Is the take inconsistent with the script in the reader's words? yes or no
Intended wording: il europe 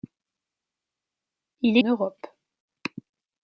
no